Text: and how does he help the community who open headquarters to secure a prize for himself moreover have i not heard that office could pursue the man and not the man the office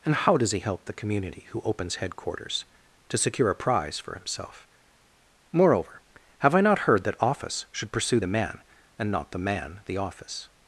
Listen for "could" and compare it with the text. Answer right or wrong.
wrong